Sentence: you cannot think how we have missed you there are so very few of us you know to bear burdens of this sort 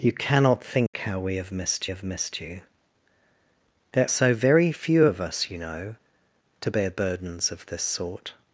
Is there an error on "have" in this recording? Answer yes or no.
no